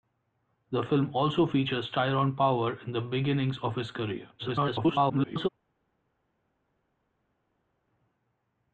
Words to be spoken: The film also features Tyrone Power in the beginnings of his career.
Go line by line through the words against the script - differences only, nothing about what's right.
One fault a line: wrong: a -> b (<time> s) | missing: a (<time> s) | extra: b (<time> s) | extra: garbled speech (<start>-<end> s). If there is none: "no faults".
extra: garbled speech (4.4-5.5 s)